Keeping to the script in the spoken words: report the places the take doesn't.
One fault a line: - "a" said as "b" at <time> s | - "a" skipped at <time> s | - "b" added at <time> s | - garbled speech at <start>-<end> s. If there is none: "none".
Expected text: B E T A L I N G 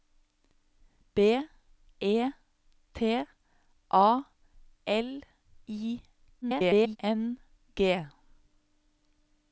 - garbled speech at 6.4-7.0 s